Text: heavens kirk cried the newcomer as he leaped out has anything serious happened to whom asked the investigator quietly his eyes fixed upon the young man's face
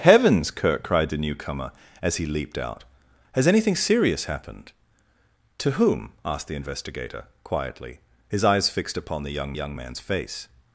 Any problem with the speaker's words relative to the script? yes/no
yes